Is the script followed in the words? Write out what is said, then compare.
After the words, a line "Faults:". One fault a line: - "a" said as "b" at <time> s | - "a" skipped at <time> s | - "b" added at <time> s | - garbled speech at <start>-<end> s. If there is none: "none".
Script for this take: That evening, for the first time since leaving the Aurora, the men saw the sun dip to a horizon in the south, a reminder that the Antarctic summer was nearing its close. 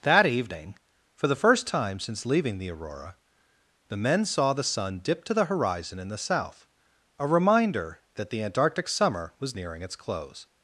That evening, for the first time since leaving the Aurora, the men saw the sun dip to the horizon in the south, a reminder that the Antarctic summer was nearing its close.
Faults:
- "a" said as "the" at 5.3 s